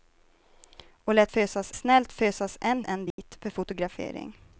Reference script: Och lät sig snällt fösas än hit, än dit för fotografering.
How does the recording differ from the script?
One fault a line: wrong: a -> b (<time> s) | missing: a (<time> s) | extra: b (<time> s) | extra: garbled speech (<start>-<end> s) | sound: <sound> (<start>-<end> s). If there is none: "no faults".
wrong: sig -> fösas (1.3 s)
missing: hit (2.8 s)
sound: dropout (3.1-3.2 s)